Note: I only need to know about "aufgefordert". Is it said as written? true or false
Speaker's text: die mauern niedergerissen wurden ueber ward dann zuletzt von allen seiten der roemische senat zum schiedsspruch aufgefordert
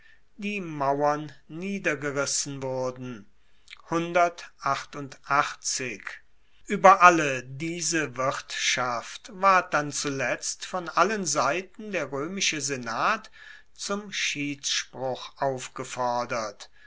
true